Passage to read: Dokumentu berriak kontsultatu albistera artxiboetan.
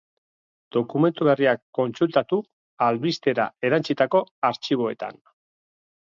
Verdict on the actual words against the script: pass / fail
fail